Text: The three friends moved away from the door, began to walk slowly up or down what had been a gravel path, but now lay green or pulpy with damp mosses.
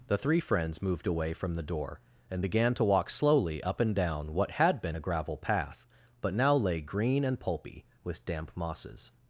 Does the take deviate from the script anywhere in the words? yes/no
yes